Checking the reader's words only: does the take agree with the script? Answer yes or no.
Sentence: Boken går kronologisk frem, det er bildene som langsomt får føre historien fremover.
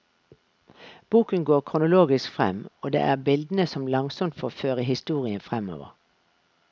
no